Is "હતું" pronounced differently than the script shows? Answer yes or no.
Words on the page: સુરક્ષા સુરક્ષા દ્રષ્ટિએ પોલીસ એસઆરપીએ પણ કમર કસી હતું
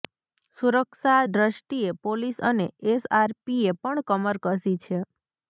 yes